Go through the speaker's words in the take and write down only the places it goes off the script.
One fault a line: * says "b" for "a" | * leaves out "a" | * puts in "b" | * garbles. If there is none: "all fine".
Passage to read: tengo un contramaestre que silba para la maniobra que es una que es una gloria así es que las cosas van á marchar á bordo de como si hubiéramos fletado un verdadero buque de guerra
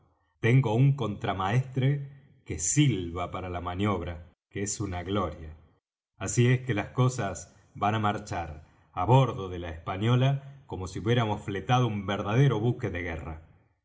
* leaves out "que es una"
* puts in "la española"